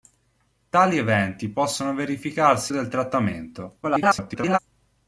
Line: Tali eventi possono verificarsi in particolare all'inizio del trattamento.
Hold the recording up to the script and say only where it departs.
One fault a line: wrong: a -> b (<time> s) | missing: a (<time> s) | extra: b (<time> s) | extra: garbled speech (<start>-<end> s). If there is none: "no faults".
missing: in particolare all'inizio (2.7 s)
extra: garbled speech (3.8-4.6 s)